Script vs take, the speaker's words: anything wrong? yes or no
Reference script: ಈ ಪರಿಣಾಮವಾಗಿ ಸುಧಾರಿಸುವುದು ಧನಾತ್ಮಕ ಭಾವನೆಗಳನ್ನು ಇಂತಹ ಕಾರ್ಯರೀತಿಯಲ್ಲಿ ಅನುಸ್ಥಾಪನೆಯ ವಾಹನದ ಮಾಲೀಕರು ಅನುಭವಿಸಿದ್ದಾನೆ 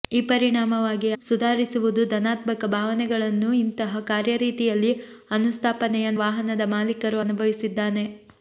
no